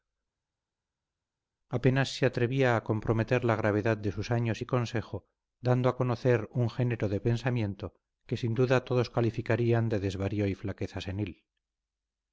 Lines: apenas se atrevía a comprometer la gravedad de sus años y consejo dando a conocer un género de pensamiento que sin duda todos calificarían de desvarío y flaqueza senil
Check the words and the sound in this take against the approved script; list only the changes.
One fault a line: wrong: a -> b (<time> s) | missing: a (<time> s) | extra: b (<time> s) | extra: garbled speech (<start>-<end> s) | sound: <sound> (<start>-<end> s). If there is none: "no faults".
no faults